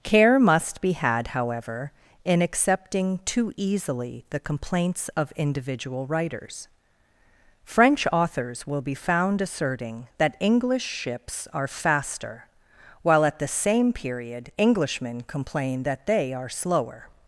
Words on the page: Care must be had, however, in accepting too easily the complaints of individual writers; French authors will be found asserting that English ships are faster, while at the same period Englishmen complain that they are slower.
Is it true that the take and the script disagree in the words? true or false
false